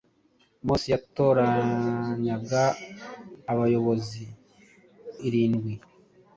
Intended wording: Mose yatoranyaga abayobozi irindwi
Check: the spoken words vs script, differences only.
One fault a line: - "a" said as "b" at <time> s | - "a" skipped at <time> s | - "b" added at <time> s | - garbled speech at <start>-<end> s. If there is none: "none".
none